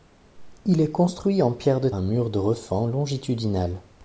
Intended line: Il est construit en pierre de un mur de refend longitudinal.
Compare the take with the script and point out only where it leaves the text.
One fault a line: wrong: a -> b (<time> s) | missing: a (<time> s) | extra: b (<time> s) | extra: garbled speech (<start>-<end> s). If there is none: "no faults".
no faults